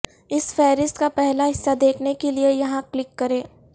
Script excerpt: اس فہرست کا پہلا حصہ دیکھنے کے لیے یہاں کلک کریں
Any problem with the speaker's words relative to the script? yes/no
no